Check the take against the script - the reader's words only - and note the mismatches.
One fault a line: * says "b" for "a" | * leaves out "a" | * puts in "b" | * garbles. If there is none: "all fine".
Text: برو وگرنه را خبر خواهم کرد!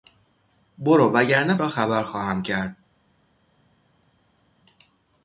all fine